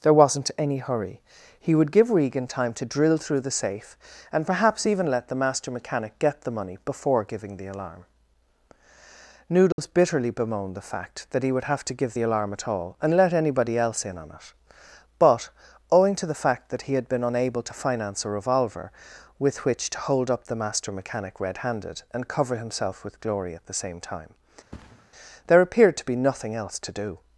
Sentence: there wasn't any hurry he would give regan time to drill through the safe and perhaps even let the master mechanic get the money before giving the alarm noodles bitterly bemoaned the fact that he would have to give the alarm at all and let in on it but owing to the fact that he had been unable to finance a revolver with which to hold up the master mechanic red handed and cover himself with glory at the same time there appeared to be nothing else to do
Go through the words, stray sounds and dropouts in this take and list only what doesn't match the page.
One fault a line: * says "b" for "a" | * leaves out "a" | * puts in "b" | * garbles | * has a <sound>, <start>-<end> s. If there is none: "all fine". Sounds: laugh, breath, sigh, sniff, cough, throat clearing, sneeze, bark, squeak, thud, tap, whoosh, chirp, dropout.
* has a dropout, 9.7-9.8 s
* puts in "anybody else"
* has a thud, 24.7-25.1 s